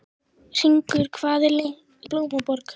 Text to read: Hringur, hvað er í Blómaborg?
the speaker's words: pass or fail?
pass